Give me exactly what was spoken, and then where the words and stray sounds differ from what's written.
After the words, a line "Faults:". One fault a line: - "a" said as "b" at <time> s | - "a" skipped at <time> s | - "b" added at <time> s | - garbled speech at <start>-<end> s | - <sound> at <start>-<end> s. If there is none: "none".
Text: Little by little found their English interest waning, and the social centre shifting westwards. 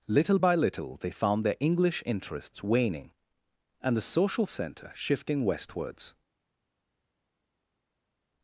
Little by little they found their English interests waning, and the social centre shifting westwards.
Faults:
- "they" added at 1.0 s
- "interest" said as "interests" at 2.0 s